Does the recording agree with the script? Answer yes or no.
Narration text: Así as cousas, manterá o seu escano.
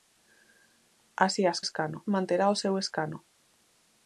no